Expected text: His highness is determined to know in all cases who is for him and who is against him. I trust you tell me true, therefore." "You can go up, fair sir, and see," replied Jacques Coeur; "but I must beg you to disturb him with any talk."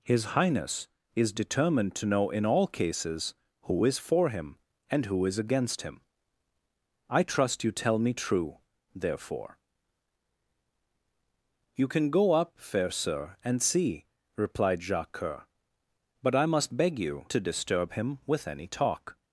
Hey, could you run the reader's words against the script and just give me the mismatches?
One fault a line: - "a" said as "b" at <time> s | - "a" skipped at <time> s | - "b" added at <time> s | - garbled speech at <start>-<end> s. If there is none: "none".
none